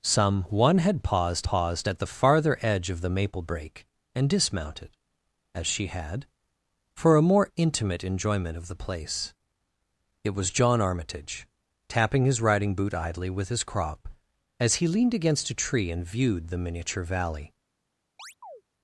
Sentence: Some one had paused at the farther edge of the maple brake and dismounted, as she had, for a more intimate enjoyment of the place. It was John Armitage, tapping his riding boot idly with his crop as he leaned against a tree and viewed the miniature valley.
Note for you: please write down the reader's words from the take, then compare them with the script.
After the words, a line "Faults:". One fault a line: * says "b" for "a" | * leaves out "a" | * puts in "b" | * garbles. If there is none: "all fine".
Some one had paused paused at the farther edge of the maple brake and dismounted, as she had, for a more intimate enjoyment of the place. It was John Armitage, tapping his riding boot idly with his crop as he leaned against a tree and viewed the miniature valley.
Faults:
* puts in "paused"